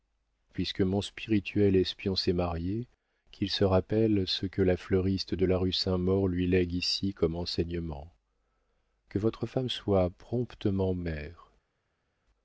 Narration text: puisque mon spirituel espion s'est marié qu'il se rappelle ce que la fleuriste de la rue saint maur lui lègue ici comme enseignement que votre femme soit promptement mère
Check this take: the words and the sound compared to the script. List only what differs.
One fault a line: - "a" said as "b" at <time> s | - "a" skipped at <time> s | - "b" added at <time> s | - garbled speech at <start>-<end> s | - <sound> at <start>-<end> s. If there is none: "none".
none